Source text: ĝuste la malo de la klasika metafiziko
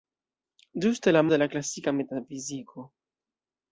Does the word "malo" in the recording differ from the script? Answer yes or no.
yes